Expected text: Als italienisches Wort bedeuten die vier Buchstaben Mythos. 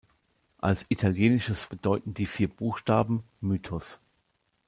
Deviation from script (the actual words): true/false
true